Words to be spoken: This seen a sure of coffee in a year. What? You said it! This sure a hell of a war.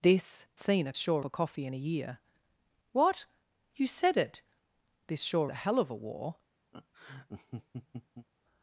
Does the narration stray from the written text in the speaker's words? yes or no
no